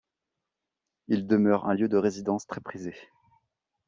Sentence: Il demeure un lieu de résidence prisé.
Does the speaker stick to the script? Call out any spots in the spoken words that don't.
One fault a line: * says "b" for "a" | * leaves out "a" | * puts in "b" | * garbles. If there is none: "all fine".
* puts in "très"